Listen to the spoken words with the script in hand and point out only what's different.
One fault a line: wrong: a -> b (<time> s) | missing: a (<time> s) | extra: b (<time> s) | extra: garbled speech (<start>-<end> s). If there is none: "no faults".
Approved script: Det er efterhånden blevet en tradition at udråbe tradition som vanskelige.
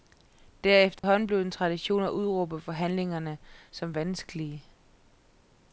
wrong: tradition -> forhandlingerne (2.6 s)